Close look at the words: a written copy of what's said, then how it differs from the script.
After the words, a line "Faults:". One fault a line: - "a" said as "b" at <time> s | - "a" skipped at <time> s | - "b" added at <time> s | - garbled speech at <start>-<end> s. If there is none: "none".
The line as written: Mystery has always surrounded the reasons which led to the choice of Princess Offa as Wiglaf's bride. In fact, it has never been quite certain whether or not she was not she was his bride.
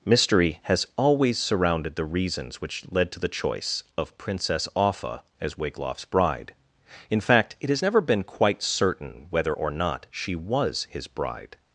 Mystery has always surrounded the reasons which led to the choice of Princess Offa as Wiglaf's bride. In fact, it has never been quite certain whether or not she was his bride.
Faults:
- "not she was" skipped at 10.9 s